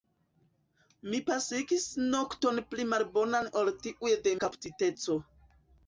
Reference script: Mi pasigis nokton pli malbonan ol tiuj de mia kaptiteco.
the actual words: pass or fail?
fail